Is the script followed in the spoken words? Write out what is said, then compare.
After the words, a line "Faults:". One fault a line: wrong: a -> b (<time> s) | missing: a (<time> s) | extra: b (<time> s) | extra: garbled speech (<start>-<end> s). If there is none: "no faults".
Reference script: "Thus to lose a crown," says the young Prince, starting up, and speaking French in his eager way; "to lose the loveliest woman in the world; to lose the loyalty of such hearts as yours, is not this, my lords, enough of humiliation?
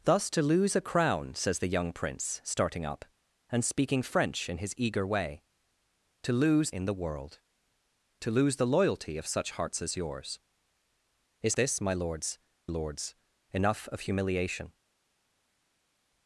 "Thus to lose a crown," says the young Prince, starting up, and speaking French in his eager way; "to lose in the world; to lose the loyalty of such hearts as yours, is this, my lords lords, enough of humiliation?
Faults:
missing: the loveliest woman (6.7 s)
missing: not (11.5 s)
extra: lords (12.7 s)